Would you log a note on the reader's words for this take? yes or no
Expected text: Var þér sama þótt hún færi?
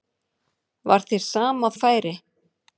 yes